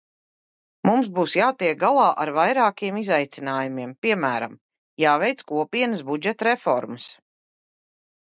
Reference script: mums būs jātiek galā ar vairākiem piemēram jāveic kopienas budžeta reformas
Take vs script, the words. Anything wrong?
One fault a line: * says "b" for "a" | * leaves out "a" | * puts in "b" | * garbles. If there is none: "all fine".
* puts in "izaicinājumiem"